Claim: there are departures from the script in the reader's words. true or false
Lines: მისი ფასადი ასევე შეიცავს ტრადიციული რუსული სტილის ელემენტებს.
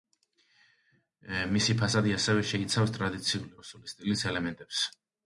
false